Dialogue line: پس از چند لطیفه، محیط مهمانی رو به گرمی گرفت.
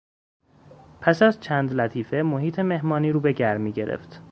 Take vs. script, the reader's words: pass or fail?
pass